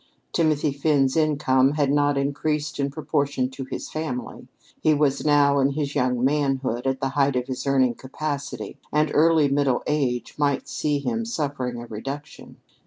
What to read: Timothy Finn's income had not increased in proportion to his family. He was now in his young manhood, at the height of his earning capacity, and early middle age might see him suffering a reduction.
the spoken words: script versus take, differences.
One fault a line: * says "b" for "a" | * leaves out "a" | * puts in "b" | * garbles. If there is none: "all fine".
all fine